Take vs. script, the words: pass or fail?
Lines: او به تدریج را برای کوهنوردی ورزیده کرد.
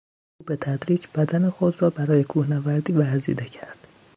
fail